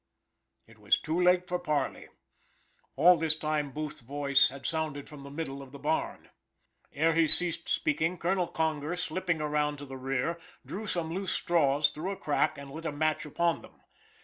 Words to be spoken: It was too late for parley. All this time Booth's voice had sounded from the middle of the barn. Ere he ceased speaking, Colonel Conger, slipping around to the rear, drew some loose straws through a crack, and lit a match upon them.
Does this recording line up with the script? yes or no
yes